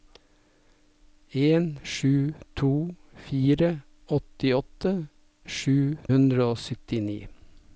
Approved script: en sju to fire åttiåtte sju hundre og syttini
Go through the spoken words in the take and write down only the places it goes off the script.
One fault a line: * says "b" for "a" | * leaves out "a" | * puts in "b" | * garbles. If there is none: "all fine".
all fine